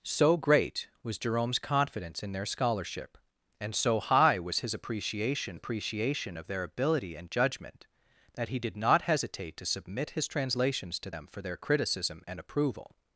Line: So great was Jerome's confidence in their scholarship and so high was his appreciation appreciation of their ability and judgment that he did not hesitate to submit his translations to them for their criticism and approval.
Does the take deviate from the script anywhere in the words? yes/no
no